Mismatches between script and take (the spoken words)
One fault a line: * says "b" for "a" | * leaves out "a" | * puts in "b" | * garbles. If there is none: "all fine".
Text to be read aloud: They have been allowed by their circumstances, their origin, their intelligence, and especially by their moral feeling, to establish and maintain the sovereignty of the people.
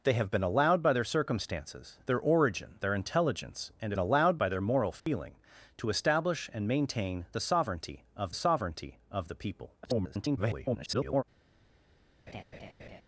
* says "allowed" for "especially"
* puts in "sovereignty of"
* garbles